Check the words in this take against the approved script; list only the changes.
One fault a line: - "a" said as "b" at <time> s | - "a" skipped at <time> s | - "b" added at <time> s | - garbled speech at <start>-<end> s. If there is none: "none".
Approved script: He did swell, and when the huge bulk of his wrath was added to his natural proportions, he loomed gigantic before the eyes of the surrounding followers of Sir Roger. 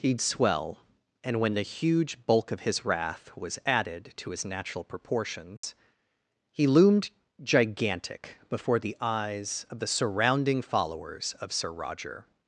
- "did" skipped at 0.1 s